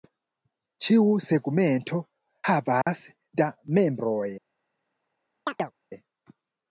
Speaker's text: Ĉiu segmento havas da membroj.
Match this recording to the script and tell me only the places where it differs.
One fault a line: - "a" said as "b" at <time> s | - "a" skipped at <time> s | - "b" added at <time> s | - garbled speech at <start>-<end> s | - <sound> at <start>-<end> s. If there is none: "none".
- dropout at 2.8-2.9 s
- chirp at 5.5-5.7 s